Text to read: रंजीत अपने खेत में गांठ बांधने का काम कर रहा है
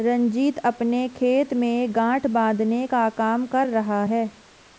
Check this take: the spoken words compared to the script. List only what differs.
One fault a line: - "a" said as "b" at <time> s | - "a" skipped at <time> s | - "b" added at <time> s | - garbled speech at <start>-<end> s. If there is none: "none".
none